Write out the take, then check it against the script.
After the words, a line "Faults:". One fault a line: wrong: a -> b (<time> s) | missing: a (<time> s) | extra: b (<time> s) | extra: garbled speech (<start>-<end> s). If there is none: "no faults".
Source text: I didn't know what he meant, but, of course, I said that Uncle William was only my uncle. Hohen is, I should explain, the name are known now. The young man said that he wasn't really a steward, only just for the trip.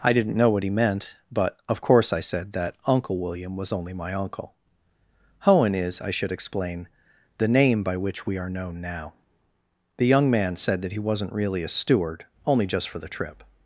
I didn't know what he meant, but, of course, I said that Uncle William was only my uncle. Hohen is, I should explain, the name by which we are known now. The young man said that he wasn't really a steward, only just for the trip.
Faults:
extra: by which we (7.8 s)